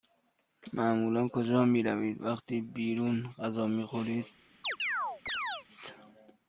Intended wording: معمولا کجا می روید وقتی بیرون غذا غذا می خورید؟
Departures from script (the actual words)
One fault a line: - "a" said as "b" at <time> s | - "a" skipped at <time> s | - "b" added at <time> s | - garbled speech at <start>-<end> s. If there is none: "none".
- "غذا" skipped at 3.7 s